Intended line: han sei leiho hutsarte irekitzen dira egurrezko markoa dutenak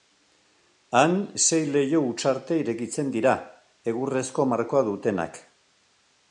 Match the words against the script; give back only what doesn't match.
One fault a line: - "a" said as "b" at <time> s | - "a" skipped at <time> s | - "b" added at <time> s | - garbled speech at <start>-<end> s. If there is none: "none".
none